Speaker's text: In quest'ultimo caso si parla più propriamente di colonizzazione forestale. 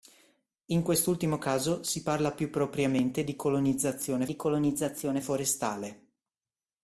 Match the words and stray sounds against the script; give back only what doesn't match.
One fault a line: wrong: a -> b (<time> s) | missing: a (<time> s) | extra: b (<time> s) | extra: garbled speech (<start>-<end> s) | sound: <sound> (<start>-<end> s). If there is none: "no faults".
extra: di colonizzazione (4.2 s)